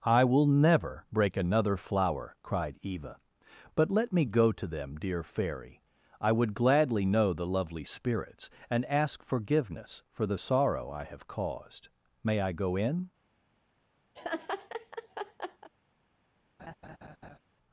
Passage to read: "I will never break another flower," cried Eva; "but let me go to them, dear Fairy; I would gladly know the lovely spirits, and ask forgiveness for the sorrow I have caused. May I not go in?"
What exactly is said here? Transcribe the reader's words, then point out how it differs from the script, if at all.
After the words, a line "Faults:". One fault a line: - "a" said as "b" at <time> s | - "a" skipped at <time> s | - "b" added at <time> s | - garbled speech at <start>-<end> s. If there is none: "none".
"I will never break another flower," cried Eva; "but let me go to them, dear Fairy; I would gladly know the lovely spirits, and ask forgiveness for the sorrow I have caused. May I go in?"
Faults:
- "not" skipped at 12.5 s